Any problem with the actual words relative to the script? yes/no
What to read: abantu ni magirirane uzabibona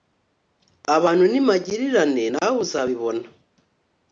yes